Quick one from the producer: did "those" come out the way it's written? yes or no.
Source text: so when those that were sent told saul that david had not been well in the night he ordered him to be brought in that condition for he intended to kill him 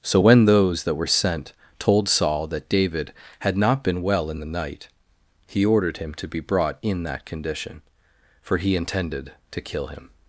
yes